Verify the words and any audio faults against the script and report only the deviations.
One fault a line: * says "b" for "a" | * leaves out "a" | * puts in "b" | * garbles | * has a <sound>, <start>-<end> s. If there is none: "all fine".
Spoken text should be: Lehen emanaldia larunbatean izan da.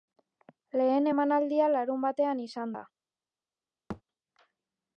* has a thud, 3.9-4.0 s